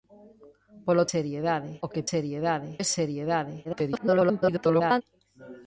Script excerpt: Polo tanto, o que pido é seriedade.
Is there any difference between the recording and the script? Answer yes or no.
yes